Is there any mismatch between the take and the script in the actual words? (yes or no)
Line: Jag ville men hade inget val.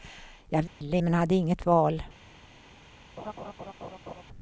no